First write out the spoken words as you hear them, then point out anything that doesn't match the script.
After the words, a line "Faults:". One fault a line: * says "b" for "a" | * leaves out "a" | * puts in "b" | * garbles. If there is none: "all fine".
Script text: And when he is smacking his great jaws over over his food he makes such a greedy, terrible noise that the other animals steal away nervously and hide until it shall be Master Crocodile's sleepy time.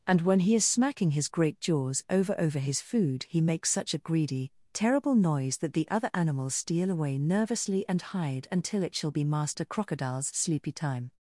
And when he is smacking his great jaws over over his food he makes such a greedy, terrible noise that the other animals steal away nervously and hide until it shall be Master Crocodile's sleepy time.
Faults:
all fine